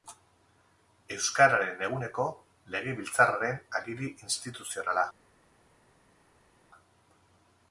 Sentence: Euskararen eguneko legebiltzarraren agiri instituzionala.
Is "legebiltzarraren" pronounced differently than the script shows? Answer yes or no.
no